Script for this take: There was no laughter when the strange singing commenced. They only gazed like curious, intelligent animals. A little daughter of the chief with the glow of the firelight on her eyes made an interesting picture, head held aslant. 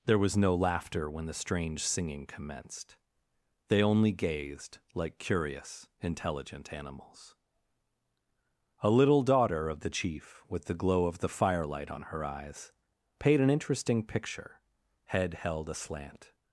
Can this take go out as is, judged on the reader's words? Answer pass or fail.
fail